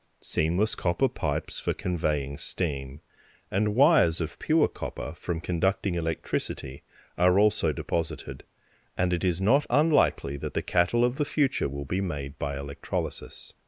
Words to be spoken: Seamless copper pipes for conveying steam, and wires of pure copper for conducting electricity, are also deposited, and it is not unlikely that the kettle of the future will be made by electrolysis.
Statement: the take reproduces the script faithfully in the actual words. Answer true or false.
false